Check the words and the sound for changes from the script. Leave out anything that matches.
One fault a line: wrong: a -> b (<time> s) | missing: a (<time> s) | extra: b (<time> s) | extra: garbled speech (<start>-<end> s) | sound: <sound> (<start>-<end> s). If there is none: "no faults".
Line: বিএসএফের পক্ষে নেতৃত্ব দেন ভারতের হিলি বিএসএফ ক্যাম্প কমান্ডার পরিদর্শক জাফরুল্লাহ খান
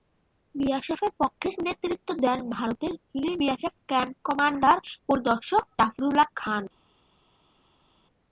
no faults